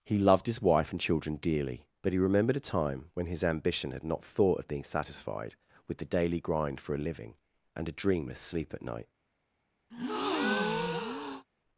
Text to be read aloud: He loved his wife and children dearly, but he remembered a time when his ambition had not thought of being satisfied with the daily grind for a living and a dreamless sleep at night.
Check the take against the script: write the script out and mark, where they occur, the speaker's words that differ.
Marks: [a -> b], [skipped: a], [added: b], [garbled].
He loved his wife and children dearly, but he remembered a time when his ambition had not thought of being satisfied with the daily grind for a living and a dreamless sleep at night.